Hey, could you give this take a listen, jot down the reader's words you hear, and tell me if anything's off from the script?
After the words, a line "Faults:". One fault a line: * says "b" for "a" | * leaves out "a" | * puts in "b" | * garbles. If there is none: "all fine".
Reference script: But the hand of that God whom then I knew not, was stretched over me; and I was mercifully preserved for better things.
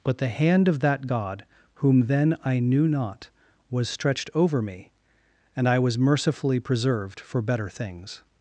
But the hand of that God whom then I knew not, was stretched over me; and I was mercifully preserved for better things.
Faults:
all fine